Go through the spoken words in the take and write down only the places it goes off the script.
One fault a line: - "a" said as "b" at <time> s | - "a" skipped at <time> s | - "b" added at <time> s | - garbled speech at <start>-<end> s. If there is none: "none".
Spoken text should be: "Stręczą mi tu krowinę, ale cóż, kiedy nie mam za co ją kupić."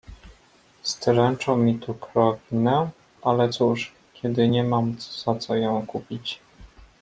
none